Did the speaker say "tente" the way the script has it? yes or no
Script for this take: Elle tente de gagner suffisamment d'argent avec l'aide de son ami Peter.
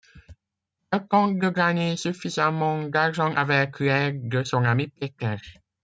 yes